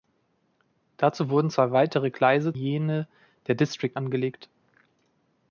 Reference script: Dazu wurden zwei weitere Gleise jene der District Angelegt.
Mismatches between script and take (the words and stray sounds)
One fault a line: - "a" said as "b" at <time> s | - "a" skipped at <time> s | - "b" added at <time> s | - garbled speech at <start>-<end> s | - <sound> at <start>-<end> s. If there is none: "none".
none